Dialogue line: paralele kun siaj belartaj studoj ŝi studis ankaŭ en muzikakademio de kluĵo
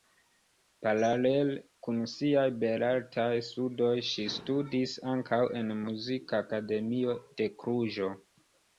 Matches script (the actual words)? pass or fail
pass